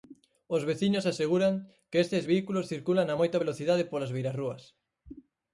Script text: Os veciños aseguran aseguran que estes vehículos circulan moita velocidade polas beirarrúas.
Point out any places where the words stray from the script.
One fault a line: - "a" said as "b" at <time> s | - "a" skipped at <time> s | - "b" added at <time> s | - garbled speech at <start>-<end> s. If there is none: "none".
- "aseguran" skipped at 1.5 s
- "a" added at 3.1 s